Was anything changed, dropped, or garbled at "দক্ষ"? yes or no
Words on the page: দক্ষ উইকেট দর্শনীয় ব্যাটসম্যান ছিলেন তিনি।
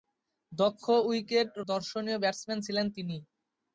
no